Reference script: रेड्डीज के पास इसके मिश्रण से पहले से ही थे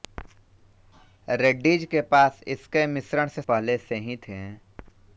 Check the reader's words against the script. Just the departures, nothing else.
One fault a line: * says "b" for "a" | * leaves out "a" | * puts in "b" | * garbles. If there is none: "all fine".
all fine